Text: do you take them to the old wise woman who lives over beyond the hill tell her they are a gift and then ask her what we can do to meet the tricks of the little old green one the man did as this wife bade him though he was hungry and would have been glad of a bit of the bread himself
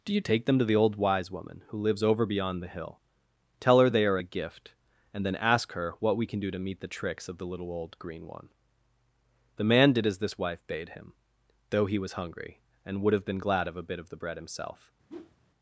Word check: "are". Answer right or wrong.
right